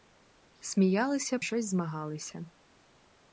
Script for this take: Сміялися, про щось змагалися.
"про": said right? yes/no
no